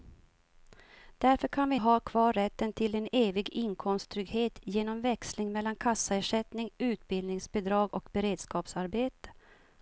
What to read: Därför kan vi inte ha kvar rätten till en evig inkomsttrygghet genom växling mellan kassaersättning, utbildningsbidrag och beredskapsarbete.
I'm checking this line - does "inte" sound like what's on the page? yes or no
no